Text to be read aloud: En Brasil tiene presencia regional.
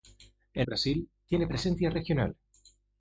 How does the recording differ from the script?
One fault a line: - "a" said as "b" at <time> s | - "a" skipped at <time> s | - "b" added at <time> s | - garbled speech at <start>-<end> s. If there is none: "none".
none